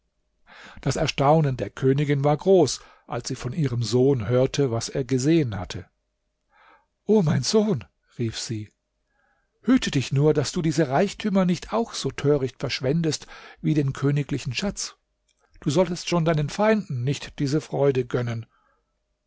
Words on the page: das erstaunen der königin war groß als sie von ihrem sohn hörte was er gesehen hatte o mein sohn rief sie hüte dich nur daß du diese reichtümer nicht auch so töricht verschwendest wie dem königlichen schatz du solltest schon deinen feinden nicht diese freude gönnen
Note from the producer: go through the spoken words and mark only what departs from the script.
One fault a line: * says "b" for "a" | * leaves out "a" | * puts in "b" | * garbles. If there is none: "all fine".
* says "den" for "dem"